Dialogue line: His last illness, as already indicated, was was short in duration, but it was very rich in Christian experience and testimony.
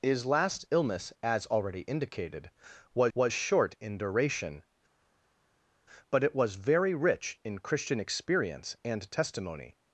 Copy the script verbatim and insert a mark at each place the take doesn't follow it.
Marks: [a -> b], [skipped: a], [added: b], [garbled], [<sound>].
His last illness, as already indicated, was was short in duration, but it was very rich in Christian experience and testimony.